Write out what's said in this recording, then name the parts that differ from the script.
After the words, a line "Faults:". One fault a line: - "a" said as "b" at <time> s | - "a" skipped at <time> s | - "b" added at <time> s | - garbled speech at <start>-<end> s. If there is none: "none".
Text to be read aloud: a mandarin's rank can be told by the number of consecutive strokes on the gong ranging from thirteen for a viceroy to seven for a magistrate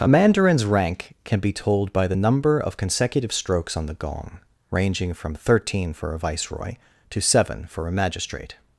a mandarin's rank can be told by the number of consecutive strokes on the gong ranging from thirteen for a viceroy to seven for a magistrate
Faults:
none